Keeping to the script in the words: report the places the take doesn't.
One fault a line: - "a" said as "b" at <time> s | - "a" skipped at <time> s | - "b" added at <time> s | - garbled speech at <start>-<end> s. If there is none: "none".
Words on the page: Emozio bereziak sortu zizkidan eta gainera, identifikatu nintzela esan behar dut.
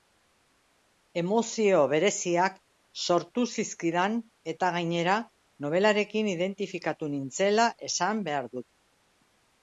- "nobelarekin" added at 5.7 s